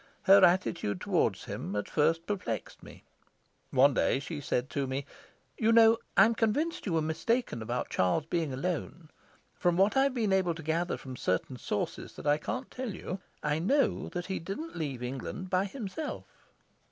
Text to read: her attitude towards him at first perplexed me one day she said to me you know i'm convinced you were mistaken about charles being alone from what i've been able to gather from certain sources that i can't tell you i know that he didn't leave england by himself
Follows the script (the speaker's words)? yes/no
yes